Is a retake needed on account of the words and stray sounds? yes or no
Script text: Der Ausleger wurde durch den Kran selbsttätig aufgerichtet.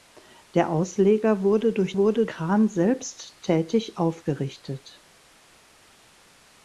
yes